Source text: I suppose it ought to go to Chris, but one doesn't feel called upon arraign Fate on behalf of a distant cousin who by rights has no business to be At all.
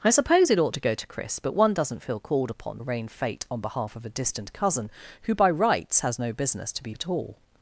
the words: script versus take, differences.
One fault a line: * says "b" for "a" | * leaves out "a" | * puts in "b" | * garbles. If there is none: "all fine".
all fine